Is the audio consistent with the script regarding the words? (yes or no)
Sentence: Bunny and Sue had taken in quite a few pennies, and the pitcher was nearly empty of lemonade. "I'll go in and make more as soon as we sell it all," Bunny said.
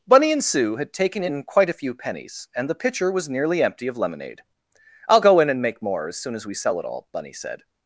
yes